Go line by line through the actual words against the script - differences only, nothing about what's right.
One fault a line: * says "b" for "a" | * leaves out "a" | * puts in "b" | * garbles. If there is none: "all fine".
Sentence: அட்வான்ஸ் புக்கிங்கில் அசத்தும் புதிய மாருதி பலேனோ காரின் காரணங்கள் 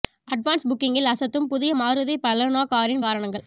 all fine